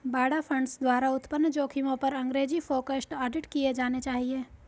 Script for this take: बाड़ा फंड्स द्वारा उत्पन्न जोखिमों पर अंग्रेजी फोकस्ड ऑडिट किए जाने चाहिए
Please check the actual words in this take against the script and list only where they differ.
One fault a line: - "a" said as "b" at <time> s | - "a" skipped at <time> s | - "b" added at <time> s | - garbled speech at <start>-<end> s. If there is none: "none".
none